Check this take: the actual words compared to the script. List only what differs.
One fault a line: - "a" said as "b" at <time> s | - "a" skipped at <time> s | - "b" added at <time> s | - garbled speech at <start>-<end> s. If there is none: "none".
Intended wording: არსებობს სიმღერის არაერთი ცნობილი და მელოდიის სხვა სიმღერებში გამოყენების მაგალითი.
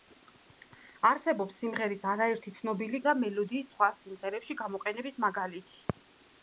none